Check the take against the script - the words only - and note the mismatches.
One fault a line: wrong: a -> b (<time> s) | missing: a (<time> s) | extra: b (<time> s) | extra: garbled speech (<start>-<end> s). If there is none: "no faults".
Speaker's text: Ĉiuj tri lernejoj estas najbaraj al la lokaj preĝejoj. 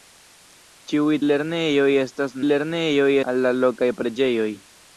missing: tri (1.2 s)
wrong: najbaraj -> lernejoj (2.5 s)